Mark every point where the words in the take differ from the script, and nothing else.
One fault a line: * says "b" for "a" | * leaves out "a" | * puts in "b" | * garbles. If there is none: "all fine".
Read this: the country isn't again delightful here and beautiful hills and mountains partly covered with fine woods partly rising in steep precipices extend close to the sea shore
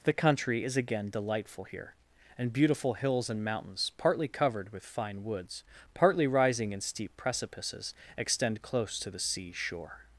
* says "is" for "isn't"